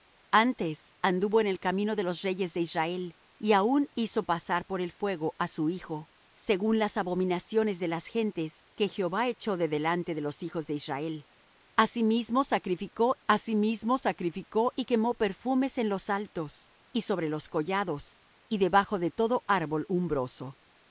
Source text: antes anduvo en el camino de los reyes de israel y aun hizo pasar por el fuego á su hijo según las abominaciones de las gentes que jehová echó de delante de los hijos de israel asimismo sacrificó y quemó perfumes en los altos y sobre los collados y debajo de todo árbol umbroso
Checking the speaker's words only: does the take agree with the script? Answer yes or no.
no